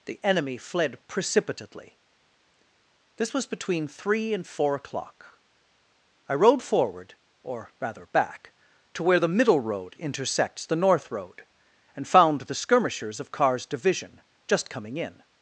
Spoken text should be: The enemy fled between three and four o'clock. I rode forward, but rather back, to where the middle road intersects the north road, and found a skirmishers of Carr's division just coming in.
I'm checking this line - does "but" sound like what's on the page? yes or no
no